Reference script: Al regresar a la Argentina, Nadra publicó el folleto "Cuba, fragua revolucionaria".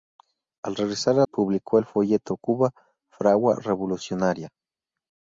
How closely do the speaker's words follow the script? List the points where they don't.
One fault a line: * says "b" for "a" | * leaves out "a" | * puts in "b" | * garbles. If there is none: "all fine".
* leaves out "la Argentina Nadra"